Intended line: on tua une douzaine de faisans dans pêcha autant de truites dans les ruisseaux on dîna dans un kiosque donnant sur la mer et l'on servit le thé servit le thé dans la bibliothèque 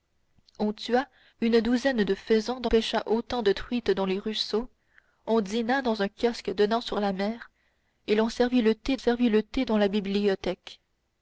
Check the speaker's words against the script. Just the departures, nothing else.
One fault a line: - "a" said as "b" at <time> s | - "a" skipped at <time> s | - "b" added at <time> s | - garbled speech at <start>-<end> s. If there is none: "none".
none